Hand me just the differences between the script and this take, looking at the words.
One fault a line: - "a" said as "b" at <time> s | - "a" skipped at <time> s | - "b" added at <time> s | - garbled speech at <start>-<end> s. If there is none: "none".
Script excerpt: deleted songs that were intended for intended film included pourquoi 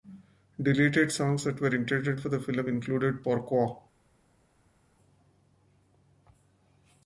- "intended" said as "the" at 2.3 s